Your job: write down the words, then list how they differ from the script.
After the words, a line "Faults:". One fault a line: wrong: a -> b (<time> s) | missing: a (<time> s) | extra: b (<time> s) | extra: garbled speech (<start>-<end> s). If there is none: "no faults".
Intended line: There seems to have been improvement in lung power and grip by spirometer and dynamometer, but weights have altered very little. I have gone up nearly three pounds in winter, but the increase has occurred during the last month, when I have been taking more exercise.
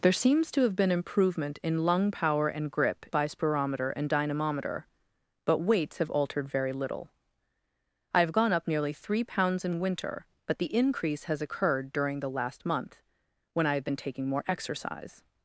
There seems to have been improvement in lung power and grip by spirometer and dynamometer, but weights have altered very little. I have gone up nearly three pounds in winter, but the increase has occurred during the last month, when I have been taking more exercise.
Faults:
no faults